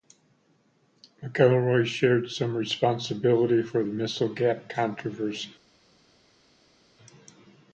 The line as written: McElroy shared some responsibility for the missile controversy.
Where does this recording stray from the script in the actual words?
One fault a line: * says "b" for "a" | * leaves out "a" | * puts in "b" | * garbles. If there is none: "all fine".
* puts in "gap"